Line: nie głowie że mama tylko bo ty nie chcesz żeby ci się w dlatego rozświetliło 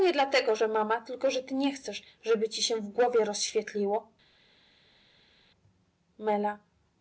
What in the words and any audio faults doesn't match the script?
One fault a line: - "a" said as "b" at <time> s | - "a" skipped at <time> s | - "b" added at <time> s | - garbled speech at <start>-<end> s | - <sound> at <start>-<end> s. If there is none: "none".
- "głowie" said as "dlatego" at 0.1 s
- "bo" said as "że" at 1.3 s
- "dlatego" said as "głowie" at 2.9 s